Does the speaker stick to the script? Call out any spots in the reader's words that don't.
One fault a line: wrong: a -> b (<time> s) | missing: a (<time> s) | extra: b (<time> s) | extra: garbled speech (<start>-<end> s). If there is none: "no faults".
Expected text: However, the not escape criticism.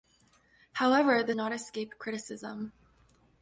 no faults